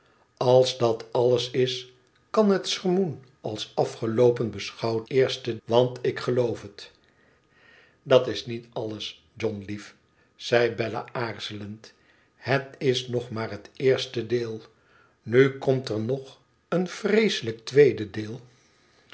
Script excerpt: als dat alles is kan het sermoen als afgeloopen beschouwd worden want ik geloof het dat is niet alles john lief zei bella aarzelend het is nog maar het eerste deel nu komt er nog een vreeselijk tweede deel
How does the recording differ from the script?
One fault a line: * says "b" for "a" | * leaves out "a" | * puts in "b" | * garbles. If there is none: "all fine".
* says "eerste" for "worden"